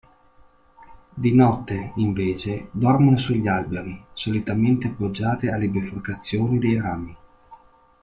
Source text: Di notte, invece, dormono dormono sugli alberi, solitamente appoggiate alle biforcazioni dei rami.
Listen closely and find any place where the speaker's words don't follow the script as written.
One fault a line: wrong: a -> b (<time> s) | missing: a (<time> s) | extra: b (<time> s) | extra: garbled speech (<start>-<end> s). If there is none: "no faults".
missing: dormono (3.2 s)